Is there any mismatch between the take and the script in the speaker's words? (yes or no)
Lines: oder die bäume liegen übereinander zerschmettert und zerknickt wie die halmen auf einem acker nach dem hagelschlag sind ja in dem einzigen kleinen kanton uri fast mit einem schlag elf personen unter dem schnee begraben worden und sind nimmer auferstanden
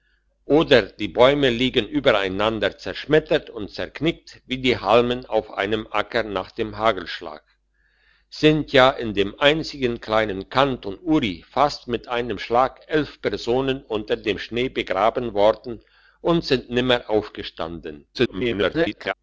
yes